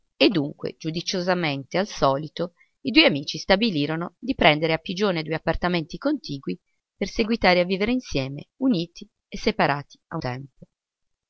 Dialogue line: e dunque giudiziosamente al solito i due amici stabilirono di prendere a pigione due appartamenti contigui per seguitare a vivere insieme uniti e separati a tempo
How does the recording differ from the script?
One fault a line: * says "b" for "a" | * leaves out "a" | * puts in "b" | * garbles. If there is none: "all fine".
all fine